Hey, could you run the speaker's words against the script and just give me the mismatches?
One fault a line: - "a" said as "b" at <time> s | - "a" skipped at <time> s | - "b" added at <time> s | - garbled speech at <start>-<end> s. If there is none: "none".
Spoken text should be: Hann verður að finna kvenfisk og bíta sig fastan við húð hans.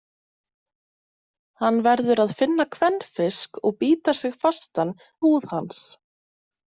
- "við" skipped at 5.0 s